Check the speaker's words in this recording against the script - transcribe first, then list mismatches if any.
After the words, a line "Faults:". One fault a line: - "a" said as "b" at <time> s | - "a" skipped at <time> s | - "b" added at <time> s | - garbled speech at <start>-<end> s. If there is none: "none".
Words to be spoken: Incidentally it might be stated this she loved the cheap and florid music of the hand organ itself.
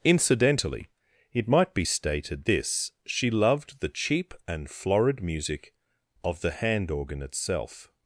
Incidentally it might be stated this she loved the cheap and florid music of the hand organ itself.
Faults:
none